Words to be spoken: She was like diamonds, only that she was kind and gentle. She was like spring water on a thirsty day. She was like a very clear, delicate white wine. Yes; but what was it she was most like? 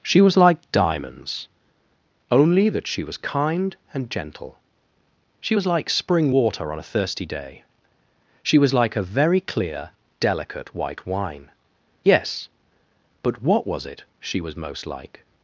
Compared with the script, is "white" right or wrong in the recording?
right